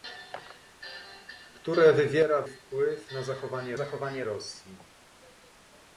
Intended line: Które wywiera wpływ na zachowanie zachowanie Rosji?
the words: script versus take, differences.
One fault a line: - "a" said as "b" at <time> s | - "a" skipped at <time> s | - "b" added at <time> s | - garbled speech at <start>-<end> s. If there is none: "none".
none